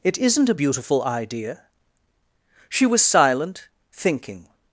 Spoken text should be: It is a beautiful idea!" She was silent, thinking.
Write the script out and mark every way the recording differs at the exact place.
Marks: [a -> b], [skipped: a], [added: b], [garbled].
It [is -> isn't] a beautiful idea!" She was silent, thinking.